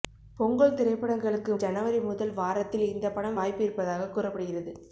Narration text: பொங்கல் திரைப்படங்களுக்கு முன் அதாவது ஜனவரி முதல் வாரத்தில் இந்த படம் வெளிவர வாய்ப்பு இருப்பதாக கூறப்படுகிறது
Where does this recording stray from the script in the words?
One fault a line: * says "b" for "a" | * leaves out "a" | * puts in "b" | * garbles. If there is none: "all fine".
* leaves out "முன் அதாவது"
* leaves out "வெளிவர"